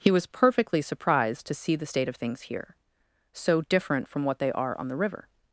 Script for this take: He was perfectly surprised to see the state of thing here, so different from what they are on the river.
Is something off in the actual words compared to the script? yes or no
yes